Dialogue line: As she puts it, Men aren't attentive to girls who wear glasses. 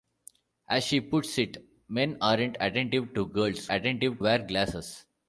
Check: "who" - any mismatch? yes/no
yes